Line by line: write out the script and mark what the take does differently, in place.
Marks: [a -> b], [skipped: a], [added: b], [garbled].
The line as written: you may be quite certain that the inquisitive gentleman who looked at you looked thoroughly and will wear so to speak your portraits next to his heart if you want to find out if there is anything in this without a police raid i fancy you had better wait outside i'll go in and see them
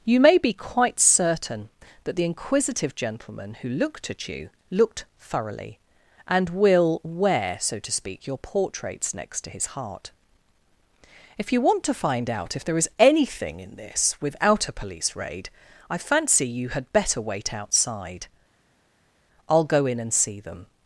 you may be quite certain that the inquisitive gentleman who looked at you looked thoroughly and will wear so to speak your portraits next to his heart if you want to find out if there is anything in this without a police raid i fancy you had better wait outside i'll go in and see them